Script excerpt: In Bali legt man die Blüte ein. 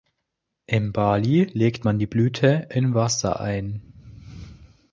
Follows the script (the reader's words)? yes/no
no